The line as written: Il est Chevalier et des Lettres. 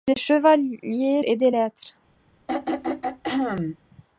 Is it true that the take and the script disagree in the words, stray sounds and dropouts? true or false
true